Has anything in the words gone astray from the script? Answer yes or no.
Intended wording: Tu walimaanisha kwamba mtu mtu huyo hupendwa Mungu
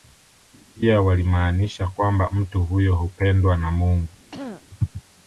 yes